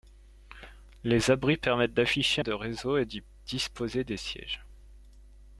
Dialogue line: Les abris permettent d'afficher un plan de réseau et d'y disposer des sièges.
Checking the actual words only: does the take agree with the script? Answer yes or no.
no